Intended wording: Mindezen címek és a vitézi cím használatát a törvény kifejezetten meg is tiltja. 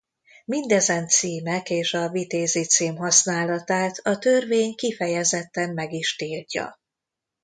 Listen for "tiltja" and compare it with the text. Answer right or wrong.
right